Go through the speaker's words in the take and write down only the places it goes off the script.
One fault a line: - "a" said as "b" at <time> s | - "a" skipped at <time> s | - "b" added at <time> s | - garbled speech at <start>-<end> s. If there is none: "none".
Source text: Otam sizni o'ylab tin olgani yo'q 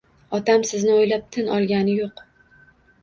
none